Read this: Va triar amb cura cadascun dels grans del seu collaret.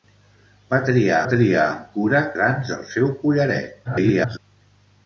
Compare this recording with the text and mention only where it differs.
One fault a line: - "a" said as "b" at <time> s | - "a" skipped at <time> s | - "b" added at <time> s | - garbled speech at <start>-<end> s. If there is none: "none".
- "triar" added at 1.3 s
- "cadascun dels" skipped at 2.2 s
- garbled speech at 3.8-4.4 s